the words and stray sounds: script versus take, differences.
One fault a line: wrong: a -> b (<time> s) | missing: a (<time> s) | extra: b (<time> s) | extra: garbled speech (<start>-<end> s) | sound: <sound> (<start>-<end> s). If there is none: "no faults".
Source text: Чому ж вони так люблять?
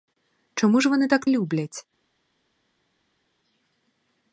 no faults